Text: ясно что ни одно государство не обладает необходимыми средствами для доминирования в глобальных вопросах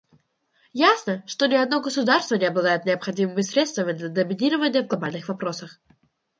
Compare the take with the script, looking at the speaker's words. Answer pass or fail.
pass